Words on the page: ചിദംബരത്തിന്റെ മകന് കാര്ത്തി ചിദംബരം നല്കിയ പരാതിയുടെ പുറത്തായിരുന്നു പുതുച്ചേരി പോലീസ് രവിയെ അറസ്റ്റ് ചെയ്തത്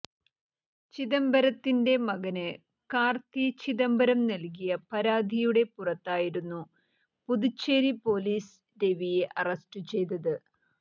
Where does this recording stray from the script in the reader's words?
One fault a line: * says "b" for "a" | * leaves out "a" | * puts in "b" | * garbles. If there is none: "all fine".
all fine